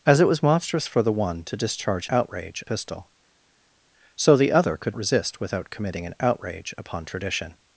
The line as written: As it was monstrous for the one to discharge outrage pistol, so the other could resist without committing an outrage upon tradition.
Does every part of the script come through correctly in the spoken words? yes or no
yes